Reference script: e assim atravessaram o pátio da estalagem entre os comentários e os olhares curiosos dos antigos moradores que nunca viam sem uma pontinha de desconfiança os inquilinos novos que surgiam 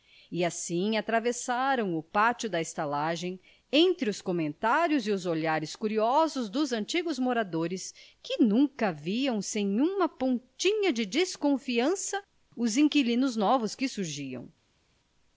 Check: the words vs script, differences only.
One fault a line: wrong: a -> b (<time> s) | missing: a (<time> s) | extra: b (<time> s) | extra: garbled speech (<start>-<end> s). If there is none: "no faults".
no faults